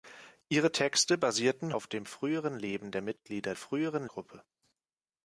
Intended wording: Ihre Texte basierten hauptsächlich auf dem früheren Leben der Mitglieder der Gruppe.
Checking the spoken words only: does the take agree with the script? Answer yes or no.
no